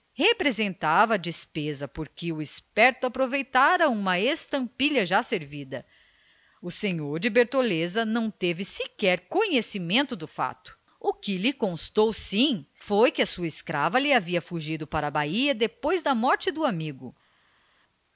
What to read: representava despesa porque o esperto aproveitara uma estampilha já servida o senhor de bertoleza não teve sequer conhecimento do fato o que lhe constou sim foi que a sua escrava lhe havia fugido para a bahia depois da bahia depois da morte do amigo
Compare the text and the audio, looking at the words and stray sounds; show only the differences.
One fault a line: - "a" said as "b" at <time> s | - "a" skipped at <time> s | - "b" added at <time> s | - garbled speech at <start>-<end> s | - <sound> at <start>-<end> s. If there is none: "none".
- "bahia depois da" skipped at 16.1 s